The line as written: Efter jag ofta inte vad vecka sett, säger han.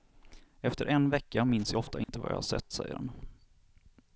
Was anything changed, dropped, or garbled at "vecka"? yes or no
yes